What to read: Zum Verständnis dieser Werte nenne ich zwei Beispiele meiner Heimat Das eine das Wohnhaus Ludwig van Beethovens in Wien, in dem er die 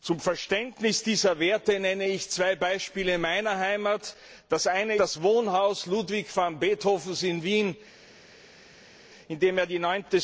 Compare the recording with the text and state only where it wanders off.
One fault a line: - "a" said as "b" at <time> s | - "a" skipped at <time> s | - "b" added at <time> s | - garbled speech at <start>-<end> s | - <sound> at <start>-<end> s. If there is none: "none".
none